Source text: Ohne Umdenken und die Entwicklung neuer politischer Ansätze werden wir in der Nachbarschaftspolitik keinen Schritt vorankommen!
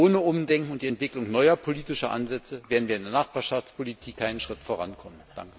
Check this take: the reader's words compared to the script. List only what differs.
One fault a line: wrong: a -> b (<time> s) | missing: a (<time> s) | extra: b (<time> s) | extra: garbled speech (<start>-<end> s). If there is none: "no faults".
no faults